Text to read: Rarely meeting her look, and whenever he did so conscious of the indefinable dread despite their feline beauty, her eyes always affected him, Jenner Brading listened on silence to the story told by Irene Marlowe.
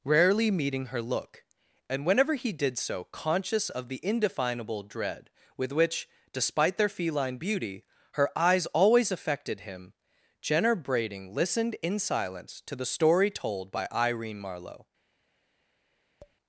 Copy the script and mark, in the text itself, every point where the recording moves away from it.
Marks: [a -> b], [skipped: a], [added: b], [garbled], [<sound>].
Rarely meeting her look, and whenever he did so conscious of the indefinable dread [added: with which] despite their feline beauty, her eyes always affected him, Jenner Brading listened [on -> in] silence to the story told by Irene Marlowe. [tap]